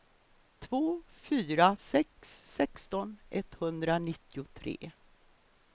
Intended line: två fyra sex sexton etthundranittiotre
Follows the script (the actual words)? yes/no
yes